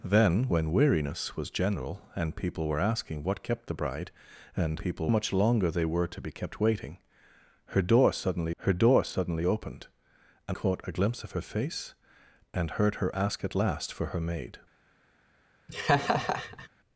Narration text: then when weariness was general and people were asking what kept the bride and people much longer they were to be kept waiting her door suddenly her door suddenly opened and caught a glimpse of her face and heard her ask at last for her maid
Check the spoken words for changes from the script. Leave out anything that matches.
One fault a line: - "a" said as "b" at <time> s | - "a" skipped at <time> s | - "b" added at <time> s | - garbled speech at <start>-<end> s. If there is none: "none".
none